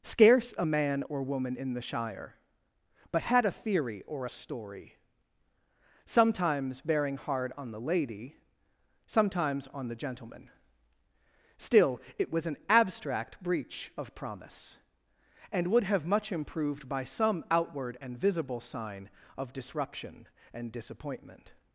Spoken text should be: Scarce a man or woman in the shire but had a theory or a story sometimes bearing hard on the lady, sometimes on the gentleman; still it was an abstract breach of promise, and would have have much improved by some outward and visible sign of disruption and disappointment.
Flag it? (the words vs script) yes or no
yes